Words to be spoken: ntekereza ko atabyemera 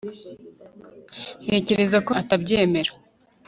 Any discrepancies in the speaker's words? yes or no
no